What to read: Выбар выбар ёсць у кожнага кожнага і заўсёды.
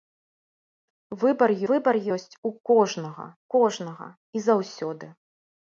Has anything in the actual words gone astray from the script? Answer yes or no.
no